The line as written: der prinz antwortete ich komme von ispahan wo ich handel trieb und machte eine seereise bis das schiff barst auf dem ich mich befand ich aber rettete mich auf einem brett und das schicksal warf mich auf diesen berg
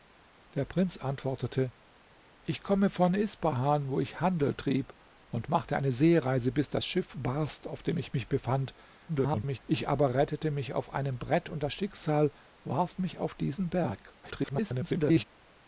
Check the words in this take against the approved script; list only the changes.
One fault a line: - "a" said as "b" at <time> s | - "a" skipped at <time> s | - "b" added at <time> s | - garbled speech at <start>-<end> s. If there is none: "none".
- garbled speech at 9.1-9.6 s
- garbled speech at 14.2-15.2 s